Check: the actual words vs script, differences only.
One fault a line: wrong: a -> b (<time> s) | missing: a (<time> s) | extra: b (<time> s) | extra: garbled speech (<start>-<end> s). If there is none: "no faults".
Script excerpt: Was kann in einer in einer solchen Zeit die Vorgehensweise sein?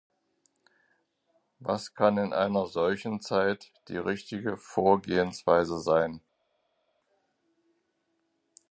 missing: in einer (2.6 s)
extra: richtige (4.0 s)